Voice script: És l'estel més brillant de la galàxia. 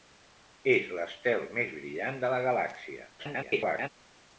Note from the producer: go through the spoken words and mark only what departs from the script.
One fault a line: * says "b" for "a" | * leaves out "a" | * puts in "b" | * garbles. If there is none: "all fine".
* garbles